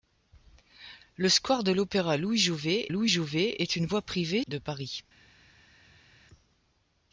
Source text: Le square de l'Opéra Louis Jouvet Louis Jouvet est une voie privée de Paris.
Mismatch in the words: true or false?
false